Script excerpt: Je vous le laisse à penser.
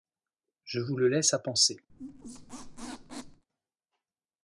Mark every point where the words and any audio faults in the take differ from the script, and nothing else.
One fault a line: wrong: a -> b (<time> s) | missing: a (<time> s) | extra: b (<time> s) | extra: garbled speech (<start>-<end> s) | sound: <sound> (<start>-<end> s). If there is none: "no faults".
sound: squeak (1.9-3.4 s)